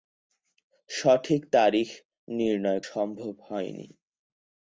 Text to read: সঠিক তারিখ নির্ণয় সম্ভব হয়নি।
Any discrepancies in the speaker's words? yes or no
no